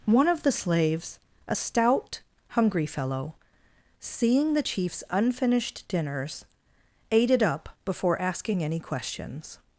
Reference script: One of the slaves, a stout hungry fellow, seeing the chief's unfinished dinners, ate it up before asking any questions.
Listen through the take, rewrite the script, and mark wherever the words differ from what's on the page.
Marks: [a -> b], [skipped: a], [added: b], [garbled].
One of the slaves, a stout hungry fellow, seeing the chief's unfinished dinners, ate it up before asking any questions.